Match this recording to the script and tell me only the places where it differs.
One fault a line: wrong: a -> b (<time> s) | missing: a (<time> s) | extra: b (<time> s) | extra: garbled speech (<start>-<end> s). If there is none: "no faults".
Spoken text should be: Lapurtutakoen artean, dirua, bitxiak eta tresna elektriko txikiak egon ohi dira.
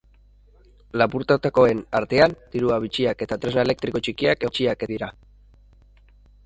wrong: egon -> bitxiak (4.5 s)